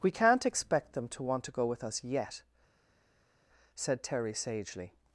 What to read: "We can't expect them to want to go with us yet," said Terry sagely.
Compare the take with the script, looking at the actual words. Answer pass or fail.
pass